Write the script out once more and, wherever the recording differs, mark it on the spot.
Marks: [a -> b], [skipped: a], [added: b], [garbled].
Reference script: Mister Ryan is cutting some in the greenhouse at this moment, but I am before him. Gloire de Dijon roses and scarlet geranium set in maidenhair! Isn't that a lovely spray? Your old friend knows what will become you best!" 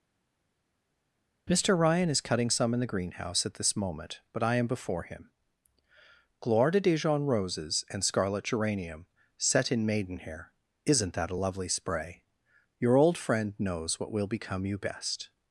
Mister Ryan is cutting some in the greenhouse at this moment, but I am before him. Gloire de Dijon roses and scarlet geranium set in maidenhair! Isn't that a lovely spray? Your old friend knows what will become you best!"